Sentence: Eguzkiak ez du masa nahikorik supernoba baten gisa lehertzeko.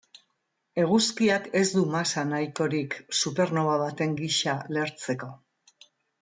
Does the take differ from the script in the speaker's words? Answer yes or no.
no